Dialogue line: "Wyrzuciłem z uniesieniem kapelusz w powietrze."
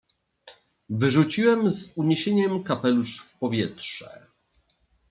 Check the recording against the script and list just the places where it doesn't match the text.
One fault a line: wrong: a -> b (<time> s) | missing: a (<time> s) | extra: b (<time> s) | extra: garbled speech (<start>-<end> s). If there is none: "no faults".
no faults